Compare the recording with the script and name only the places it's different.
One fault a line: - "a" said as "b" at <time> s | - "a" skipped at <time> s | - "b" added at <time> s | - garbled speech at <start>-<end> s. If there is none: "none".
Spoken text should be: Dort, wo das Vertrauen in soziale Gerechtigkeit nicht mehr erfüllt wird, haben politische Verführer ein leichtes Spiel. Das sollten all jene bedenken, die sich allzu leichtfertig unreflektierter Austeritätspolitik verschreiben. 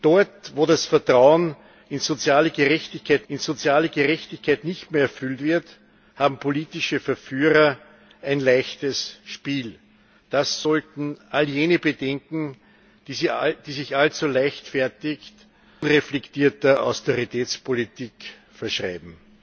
- "in soziale Gerechtigkeit" added at 3.3 s